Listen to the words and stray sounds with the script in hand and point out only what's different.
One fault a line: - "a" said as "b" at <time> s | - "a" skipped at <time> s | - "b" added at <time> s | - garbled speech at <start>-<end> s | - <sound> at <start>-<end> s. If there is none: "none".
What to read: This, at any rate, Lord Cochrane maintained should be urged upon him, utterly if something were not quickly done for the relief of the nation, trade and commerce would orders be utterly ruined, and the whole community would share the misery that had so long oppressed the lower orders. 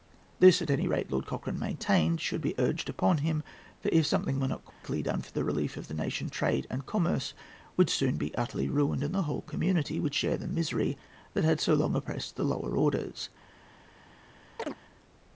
- "utterly" said as "for" at 3.8 s
- dropout at 4.7-4.8 s
- "orders" said as "soon" at 7.9 s
- chirp at 14.6-14.8 s